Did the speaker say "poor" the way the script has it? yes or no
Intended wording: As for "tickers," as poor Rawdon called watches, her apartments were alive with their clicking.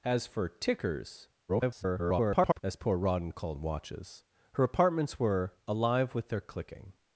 yes